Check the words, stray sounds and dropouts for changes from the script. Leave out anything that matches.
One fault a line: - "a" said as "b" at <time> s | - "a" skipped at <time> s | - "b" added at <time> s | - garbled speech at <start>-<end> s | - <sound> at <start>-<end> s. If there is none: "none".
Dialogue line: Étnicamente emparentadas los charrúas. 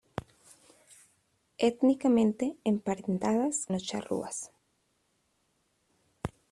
none